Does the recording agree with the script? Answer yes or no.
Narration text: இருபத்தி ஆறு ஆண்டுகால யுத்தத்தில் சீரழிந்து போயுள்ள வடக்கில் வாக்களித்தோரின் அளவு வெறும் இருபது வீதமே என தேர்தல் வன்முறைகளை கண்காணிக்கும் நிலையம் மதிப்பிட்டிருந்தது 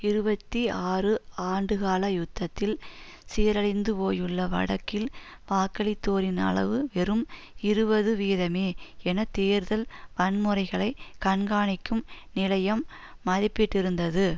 yes